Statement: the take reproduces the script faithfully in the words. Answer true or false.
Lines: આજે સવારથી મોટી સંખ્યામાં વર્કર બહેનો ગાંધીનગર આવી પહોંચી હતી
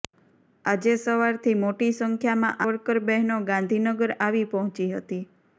true